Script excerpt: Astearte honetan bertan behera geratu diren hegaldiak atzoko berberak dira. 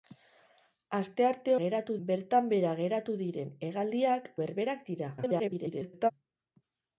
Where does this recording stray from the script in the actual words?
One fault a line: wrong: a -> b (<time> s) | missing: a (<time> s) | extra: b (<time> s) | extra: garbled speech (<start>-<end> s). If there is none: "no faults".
wrong: honetan -> geratu (1.6 s)
missing: atzoko (4.3 s)
extra: garbled speech (5.2-6.1 s)